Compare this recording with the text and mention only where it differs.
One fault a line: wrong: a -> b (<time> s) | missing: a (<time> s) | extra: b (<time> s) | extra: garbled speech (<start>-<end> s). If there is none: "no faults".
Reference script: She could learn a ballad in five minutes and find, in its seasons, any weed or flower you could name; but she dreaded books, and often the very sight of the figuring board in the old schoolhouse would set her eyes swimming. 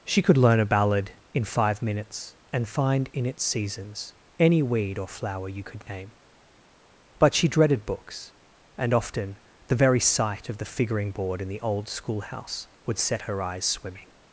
no faults